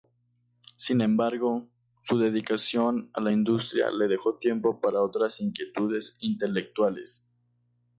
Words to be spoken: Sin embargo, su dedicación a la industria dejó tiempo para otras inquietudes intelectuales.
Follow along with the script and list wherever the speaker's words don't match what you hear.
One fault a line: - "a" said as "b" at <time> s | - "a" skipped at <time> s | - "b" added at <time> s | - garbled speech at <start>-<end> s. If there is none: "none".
- "le" added at 3.9 s